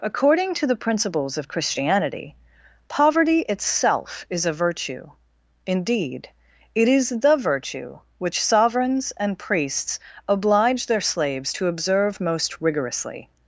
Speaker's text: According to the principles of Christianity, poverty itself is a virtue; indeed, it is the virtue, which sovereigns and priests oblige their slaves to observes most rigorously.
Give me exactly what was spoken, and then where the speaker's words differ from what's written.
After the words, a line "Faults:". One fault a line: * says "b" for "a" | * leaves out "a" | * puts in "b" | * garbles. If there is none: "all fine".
According to the principles of Christianity, poverty itself is a virtue; indeed, it is the virtue, which sovereigns and priests oblige their slaves to observe most rigorously.
Faults:
* says "observe" for "observes"